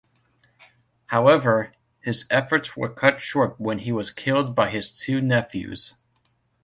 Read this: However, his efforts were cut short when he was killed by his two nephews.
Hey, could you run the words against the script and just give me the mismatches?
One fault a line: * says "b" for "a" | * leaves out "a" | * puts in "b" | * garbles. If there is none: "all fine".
all fine